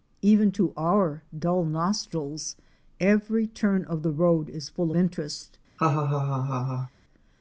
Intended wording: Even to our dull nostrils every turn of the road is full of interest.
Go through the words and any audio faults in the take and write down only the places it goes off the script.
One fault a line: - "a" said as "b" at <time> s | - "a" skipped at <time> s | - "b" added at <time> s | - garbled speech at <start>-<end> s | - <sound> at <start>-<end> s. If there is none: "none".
- "of" skipped at 4.9 s
- laugh at 5.8-6.9 s